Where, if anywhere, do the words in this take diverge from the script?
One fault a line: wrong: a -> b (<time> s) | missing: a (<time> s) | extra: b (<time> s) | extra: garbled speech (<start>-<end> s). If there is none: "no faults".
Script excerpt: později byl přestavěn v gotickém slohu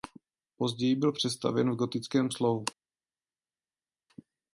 no faults